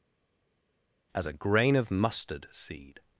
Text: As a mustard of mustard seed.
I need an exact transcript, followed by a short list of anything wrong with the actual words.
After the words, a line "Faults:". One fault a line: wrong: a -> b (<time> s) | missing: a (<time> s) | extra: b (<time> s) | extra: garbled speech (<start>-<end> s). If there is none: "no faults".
As a grain of mustard seed.
Faults:
wrong: mustard -> grain (1.3 s)